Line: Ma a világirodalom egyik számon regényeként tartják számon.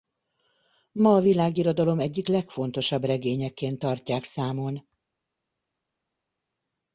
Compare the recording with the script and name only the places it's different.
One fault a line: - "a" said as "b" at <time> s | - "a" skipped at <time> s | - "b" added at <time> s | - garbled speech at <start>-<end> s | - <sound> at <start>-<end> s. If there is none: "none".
- "számon" said as "legfontosabb" at 2.3 s